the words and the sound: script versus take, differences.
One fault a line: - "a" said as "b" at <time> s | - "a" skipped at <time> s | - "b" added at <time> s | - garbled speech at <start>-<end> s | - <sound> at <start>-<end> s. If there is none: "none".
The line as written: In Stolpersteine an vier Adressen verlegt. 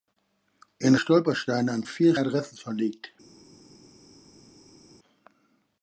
none